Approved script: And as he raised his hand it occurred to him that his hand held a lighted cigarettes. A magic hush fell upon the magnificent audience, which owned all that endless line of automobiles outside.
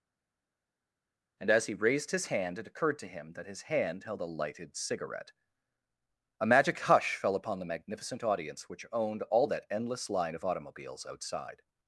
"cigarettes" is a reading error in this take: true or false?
true